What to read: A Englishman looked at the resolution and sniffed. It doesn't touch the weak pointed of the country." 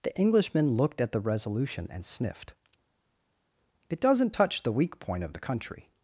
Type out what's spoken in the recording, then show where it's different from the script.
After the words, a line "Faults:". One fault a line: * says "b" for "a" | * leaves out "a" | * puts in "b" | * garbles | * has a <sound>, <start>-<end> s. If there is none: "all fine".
The Englishman looked at the resolution and sniffed. It doesn't touch the weak point of the country."
Faults:
* says "The" for "A"
* says "point" for "pointed"